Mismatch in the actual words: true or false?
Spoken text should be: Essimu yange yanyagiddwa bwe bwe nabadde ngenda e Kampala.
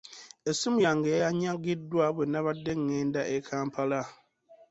true